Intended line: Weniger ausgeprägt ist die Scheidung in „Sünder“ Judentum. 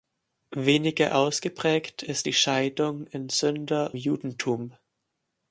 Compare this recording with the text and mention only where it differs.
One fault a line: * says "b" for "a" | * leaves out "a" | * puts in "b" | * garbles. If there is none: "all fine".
all fine